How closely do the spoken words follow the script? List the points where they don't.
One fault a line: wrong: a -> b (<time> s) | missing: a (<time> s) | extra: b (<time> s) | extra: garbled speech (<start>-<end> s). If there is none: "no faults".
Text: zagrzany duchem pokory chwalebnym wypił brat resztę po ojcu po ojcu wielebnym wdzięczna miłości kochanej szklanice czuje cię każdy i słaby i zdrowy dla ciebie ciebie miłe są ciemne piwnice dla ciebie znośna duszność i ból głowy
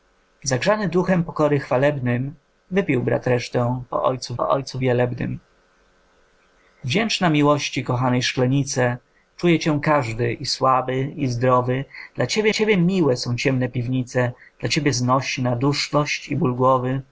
no faults